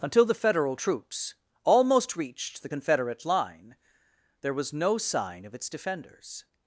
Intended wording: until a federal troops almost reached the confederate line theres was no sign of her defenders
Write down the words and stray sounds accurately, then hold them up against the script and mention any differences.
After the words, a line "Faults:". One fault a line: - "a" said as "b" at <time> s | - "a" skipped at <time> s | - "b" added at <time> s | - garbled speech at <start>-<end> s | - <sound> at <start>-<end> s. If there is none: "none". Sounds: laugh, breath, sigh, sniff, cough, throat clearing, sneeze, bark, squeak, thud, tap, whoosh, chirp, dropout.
until the federal troops almost reached the confederate line there was no sign of its defenders
Faults:
- "a" said as "the" at 0.2 s
- "theres" said as "there" at 4.4 s
- "her" said as "its" at 5.6 s